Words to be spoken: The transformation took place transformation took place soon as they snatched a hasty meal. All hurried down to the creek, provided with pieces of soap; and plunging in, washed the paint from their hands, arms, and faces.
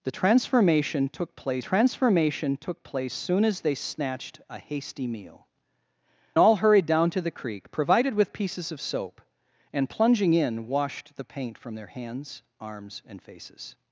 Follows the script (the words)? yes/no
yes